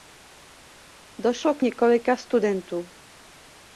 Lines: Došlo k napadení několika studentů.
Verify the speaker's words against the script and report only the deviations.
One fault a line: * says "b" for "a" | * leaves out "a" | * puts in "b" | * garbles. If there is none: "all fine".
* leaves out "napadení"